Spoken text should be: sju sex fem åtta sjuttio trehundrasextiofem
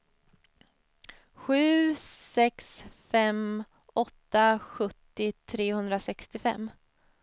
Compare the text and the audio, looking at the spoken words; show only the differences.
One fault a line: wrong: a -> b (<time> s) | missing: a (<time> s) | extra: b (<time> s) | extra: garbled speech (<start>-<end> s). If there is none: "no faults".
no faults